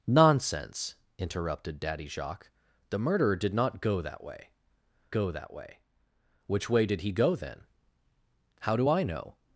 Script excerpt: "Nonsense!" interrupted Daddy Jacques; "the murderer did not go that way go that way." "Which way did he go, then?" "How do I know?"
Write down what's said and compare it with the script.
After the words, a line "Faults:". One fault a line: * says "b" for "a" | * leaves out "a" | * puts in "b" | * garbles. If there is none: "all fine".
"Nonsense!" interrupted Daddy Jacques; "the murderer did not go that way go that way." "Which way did he go, then?" "How do I know?"
Faults:
all fine